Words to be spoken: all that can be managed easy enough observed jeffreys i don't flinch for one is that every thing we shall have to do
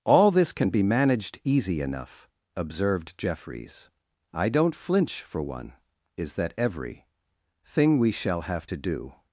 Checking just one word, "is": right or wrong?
right